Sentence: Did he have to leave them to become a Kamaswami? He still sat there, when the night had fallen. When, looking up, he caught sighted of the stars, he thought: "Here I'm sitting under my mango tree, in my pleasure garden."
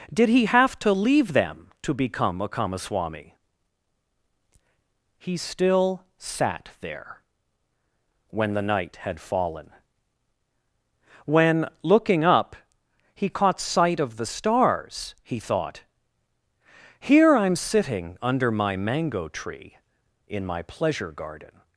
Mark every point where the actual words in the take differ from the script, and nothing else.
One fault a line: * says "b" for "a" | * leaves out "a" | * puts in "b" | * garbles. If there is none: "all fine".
* says "sight" for "sighted"